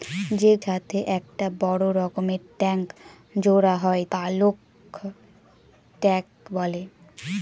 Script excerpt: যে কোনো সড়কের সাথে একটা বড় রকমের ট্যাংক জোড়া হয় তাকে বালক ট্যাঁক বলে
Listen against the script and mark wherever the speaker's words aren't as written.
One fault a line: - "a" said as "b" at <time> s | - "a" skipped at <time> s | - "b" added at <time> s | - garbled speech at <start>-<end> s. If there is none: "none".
- "কোনো সড়কের" skipped at 0.5 s
- "তাকে" skipped at 4.0 s